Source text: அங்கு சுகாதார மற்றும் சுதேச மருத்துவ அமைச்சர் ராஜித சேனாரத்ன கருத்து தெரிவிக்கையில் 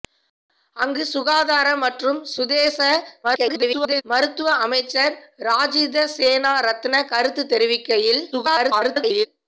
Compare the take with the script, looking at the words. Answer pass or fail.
fail